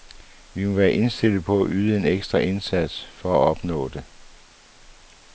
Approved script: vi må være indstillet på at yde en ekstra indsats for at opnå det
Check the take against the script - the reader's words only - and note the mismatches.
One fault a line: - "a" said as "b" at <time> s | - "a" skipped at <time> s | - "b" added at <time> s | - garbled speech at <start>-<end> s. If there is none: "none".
none